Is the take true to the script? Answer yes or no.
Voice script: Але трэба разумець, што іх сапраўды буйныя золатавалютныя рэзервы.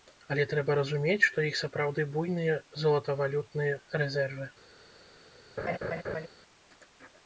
yes